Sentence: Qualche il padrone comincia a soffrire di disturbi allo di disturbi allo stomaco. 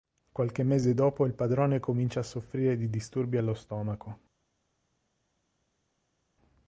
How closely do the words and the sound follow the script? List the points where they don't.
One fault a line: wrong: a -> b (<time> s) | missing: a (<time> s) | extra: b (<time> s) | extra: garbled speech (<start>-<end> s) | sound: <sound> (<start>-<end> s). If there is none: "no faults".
extra: mese dopo (0.6 s)
missing: di disturbi allo (3.5 s)